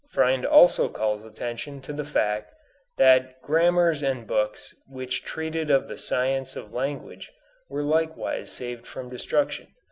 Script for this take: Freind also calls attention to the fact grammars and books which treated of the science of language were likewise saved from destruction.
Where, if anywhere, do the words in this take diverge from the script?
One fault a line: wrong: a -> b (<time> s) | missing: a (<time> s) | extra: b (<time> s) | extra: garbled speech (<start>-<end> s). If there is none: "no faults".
extra: that (3.0 s)